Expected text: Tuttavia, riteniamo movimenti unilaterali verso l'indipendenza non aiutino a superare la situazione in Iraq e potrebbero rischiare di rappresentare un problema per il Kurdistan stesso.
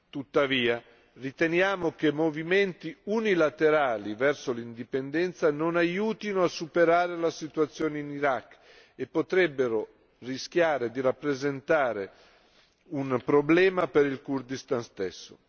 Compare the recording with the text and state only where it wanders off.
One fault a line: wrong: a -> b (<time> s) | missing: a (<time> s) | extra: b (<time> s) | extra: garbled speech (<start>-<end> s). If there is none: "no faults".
extra: che (1.9 s)